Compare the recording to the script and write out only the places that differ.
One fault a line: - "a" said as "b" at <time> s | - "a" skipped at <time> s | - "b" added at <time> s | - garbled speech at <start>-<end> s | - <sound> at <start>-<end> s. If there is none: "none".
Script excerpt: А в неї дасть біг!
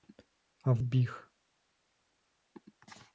- "неї дасть" skipped at 0.8 s